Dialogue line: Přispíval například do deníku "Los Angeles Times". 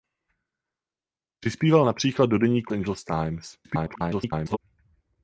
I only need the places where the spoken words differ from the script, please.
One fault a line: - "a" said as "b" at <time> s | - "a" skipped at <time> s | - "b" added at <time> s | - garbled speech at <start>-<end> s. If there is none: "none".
- "Los" skipped at 2.7 s
- garbled speech at 3.6-4.6 s